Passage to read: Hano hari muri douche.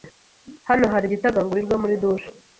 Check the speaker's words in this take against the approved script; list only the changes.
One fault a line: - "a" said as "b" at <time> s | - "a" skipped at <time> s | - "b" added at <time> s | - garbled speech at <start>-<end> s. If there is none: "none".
- "igitagangurirwa" added at 1.1 s